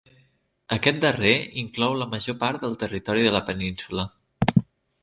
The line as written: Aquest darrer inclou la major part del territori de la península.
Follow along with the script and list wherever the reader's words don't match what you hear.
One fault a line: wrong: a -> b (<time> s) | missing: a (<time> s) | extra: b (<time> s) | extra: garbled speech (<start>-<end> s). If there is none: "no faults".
no faults